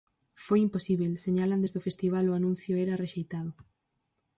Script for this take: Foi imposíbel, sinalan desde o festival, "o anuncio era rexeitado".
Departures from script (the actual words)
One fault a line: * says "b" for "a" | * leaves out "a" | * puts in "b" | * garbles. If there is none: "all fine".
all fine